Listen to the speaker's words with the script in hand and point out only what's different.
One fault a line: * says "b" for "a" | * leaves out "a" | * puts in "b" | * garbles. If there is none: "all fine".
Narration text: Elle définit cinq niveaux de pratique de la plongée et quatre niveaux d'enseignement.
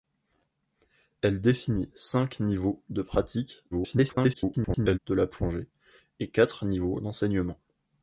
* garbles